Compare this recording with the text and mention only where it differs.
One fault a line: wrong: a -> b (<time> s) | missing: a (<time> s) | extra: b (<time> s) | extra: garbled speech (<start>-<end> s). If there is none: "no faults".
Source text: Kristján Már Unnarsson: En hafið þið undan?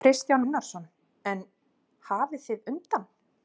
missing: Már (0.4 s)